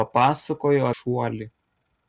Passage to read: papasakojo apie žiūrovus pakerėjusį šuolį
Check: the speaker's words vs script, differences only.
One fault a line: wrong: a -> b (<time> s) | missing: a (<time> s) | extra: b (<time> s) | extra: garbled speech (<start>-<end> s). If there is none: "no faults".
missing: apie žiūrovus pakerėjusį (0.9 s)